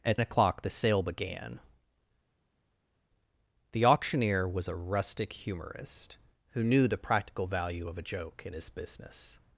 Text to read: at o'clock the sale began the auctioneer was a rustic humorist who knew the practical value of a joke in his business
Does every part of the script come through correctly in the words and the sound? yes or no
yes